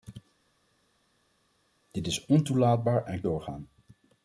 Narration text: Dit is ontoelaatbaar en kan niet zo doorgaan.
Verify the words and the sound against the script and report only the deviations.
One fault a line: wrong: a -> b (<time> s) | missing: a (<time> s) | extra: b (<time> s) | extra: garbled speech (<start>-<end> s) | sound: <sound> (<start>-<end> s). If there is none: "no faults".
missing: kan niet zo (3.2 s)